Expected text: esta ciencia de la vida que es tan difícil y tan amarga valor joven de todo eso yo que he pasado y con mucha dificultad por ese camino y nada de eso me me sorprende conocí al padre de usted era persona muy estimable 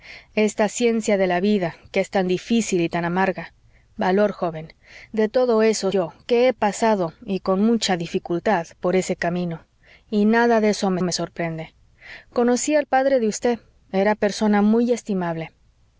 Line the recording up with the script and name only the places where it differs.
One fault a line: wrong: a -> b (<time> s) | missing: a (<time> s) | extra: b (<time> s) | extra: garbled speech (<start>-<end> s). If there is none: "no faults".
no faults